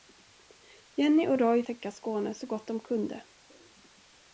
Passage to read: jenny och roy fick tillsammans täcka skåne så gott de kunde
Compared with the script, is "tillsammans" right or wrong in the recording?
wrong